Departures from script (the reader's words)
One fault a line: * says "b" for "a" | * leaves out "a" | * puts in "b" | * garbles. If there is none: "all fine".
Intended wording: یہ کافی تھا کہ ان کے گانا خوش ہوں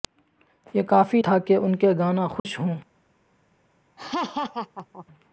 all fine